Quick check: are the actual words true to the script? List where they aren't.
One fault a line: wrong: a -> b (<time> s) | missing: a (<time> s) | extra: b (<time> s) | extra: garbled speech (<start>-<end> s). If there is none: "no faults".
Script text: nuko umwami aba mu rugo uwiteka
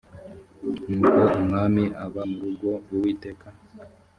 no faults